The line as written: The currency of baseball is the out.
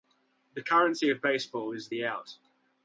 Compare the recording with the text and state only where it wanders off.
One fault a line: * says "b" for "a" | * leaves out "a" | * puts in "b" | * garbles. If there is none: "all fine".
all fine